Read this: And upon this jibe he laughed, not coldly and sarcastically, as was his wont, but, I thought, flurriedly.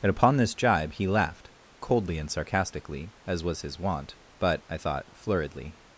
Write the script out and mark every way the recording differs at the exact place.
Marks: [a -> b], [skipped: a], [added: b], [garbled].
And upon this jibe he laughed, [skipped: not] coldly and sarcastically, as was his wont, but, I thought, flurriedly.